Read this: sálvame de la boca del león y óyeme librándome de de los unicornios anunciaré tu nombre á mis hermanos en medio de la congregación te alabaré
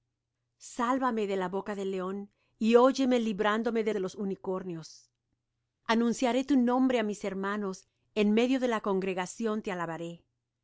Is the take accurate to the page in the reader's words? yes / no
yes